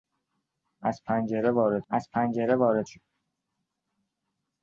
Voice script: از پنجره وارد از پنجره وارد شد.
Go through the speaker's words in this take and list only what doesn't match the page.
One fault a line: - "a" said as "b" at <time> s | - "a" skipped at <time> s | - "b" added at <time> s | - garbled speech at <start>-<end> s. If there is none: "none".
none